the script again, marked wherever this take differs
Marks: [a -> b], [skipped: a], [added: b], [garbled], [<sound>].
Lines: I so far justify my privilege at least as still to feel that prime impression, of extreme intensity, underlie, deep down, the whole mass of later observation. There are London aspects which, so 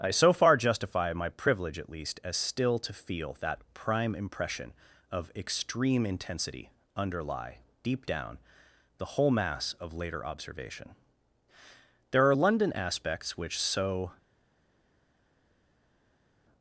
I so far justify my privilege at least as still to feel that prime impression, of extreme intensity, underlie, deep down, the whole mass of later observation. There are London aspects which, so